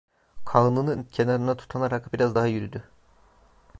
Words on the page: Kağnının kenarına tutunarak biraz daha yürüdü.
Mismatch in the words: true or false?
false